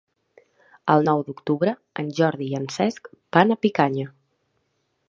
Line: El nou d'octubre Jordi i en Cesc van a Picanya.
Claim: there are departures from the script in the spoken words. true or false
true